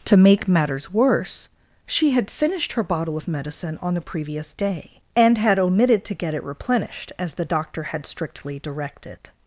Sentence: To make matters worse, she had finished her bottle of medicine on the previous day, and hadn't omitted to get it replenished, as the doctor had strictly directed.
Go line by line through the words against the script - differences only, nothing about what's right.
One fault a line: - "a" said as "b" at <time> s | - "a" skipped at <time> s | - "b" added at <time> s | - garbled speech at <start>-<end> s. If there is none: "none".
- "hadn't" said as "had" at 5.4 s